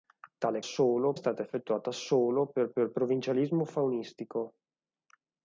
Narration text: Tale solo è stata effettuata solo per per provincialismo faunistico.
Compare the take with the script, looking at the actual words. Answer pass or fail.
pass